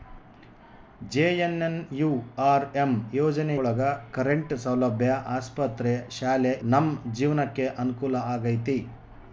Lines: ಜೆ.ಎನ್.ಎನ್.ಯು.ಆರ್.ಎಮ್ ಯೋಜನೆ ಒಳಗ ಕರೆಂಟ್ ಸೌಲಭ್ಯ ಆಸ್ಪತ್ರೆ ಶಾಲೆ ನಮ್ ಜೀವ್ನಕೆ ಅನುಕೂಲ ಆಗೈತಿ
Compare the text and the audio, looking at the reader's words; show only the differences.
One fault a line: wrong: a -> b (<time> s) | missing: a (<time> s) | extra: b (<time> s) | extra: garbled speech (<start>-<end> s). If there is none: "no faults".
no faults